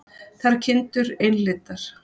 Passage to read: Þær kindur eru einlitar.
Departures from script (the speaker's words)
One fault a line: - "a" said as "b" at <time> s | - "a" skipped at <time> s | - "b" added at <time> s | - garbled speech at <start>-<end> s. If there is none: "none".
- "eru" skipped at 1.1 s